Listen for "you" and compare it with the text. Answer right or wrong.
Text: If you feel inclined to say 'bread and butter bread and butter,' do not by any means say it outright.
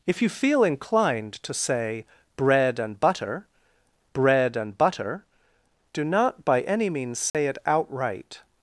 right